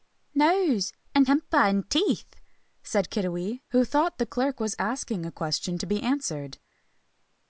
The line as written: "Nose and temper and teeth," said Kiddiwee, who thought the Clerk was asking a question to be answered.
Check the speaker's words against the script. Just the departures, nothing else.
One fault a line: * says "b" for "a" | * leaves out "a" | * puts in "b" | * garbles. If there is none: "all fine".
all fine